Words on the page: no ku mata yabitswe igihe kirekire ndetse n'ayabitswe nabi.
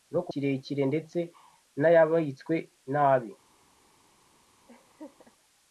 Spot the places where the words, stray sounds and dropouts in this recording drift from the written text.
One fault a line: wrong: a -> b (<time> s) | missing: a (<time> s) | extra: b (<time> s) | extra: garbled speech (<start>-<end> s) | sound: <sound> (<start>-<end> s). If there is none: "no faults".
missing: mata yabitswe igihe (0.3 s)
sound: laugh (4.7-5.3 s)